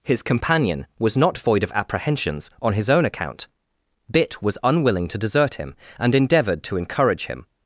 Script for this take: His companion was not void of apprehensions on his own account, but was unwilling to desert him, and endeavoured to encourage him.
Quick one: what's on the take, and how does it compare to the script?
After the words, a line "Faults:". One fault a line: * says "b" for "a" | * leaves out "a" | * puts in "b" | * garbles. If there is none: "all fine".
His companion was not void of apprehensions on his own account, bit was unwilling to desert him, and endeavoured to encourage him.
Faults:
* says "bit" for "but"